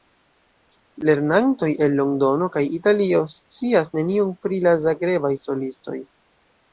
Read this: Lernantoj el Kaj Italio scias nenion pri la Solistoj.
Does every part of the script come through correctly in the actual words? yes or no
no